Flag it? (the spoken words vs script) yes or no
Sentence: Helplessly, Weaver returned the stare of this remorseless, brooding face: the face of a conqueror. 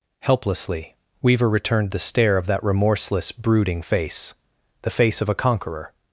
yes